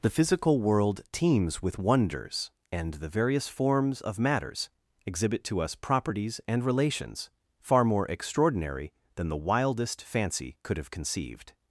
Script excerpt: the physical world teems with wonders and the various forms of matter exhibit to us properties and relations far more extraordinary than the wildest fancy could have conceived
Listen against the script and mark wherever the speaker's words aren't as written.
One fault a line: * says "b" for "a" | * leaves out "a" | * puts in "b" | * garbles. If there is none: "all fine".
* says "matters" for "matter"